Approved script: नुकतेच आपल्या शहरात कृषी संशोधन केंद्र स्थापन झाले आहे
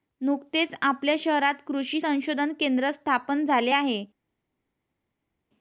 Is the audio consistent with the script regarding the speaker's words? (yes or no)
yes